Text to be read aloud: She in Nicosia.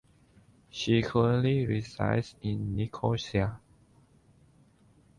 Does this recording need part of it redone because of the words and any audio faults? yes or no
yes